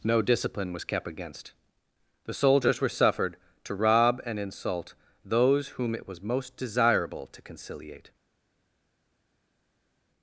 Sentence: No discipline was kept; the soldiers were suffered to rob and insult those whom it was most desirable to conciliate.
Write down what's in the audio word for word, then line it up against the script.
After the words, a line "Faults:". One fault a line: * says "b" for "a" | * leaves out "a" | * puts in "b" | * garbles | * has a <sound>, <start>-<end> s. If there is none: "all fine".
No discipline was kept; against the soldiers were suffered to rob and insult those whom it was most desirable to conciliate.
Faults:
* puts in "against"